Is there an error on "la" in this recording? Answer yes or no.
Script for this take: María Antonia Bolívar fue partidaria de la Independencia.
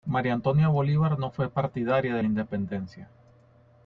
no